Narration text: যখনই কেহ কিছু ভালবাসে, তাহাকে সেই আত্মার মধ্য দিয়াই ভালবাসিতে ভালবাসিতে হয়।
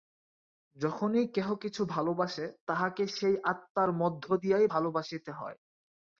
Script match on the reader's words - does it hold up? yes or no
no